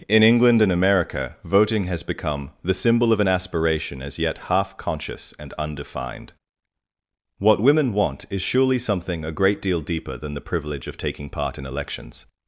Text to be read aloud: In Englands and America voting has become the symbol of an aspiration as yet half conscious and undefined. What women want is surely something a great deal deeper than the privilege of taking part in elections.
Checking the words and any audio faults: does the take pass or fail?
fail